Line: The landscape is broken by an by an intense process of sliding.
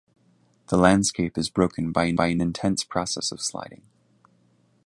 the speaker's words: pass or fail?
pass